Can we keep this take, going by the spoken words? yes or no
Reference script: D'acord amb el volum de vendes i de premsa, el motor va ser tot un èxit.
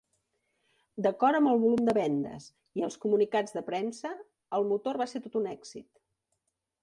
no